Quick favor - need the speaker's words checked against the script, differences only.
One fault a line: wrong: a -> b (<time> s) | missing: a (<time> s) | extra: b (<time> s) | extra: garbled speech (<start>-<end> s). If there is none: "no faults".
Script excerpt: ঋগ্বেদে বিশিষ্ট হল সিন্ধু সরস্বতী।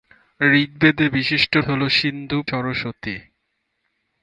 no faults